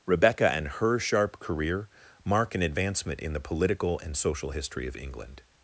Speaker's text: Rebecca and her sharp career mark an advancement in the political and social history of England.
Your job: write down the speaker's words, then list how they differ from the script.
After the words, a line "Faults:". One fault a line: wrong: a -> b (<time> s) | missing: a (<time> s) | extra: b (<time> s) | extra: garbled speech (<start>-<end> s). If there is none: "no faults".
Rebecca and her sharp career mark an advancement in the political and social history of England.
Faults:
no faults